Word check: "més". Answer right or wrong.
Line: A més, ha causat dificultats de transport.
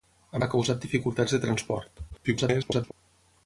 wrong